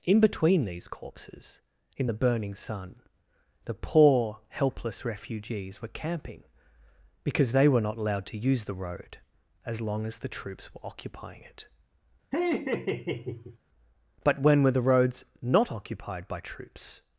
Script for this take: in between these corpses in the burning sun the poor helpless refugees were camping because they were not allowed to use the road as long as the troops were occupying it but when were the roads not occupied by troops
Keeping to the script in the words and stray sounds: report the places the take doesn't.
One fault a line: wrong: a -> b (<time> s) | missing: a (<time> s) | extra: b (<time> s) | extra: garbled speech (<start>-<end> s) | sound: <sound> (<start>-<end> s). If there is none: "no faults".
sound: laugh (12.3-13.6 s)